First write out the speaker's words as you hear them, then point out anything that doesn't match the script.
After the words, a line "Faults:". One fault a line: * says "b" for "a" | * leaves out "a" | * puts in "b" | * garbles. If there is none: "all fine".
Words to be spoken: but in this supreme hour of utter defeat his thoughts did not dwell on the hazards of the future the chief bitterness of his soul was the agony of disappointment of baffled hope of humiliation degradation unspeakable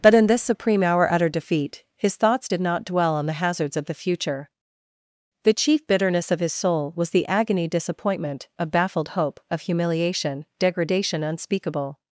but in this supreme hour utter defeat his thoughts did not dwell on the hazards of the future the chief bitterness of his soul was the agony disappointment of baffled hope of humiliation degradation unspeakable
Faults:
* leaves out "of"
* leaves out "of"